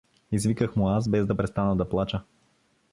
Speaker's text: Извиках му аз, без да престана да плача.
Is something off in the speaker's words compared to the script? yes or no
no